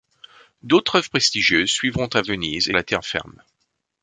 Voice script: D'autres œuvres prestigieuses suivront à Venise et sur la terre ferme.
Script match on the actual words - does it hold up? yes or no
no